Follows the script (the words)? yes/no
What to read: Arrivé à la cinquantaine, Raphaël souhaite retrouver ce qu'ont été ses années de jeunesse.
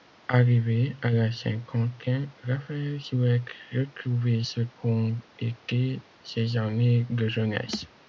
yes